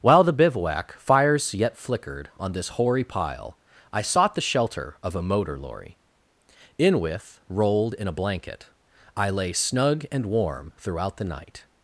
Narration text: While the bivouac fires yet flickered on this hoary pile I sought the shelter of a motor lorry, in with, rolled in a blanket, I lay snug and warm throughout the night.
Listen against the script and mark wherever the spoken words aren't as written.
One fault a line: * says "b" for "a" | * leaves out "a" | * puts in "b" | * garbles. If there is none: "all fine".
all fine